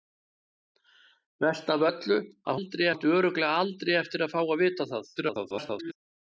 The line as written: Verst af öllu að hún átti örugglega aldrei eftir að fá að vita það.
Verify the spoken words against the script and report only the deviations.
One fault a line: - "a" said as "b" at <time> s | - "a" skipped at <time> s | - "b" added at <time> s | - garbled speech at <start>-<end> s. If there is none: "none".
- "hún" said as "aldrei" at 2.5 s
- garbled speech at 5.2-5.9 s